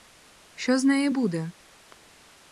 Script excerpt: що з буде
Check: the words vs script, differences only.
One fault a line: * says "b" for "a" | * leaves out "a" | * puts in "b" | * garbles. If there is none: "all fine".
* puts in "неї"